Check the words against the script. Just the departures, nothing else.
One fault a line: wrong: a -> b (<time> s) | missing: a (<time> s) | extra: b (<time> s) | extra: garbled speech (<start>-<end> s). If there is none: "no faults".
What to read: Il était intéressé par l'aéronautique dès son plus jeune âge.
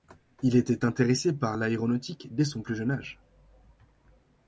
no faults